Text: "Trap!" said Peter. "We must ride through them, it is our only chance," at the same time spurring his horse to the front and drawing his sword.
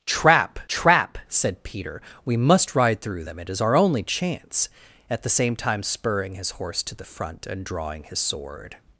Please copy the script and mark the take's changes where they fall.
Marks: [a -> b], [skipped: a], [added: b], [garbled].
"Trap!" [added: trap] said Peter. "We must ride through them, it is our only chance," at the same time spurring his horse to the front and drawing his sword.